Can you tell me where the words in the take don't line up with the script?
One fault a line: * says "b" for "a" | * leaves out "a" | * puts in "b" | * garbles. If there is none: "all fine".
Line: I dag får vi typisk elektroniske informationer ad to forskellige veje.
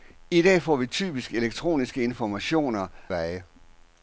* leaves out "ad to forskellige"